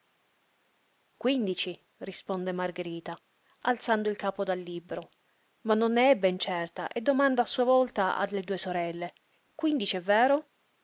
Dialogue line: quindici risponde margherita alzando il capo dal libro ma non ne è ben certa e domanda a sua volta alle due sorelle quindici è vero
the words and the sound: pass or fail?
pass